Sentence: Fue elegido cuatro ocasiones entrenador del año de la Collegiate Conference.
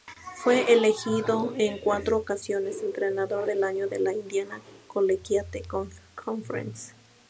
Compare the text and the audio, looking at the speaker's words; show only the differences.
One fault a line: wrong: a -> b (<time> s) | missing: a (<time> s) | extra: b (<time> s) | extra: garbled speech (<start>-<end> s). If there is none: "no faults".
extra: en (1.6 s)
extra: Indiana (4.1 s)